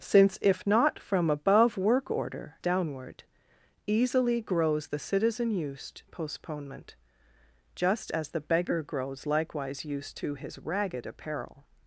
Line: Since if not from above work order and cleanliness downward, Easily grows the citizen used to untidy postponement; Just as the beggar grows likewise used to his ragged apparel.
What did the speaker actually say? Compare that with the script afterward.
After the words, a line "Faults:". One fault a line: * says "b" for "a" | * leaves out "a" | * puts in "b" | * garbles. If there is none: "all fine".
Since if not from above work order downward, Easily grows the citizen used postponement; Just as the beggar grows likewise used to his ragged apparel.
Faults:
* leaves out "and cleanliness"
* leaves out "to untidy"